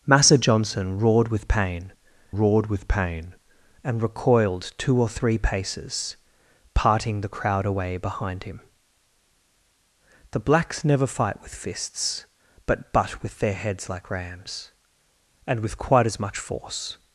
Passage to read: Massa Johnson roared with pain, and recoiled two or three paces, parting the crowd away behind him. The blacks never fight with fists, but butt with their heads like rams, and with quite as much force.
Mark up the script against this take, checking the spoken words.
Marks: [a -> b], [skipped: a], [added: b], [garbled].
Massa Johnson roared with pain, [added: roared with pain] and recoiled two or three paces, parting the crowd away behind him. The blacks never fight with fists, but butt with their heads like rams, and with quite as much force.